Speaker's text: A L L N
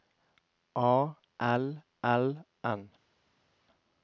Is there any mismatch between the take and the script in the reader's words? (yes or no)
no